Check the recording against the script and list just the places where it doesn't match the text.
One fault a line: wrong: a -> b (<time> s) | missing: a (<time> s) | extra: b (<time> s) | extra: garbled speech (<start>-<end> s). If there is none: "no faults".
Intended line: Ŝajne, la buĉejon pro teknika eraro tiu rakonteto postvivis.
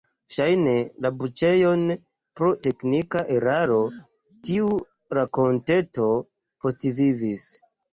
no faults